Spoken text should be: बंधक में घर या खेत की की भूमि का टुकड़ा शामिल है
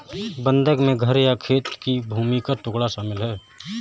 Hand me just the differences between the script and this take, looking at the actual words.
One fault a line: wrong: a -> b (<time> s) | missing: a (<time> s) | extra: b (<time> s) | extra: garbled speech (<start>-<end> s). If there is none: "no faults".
missing: की (2.0 s)